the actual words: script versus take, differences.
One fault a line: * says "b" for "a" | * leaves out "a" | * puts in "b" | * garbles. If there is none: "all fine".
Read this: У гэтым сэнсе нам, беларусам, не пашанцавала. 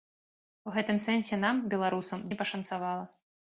all fine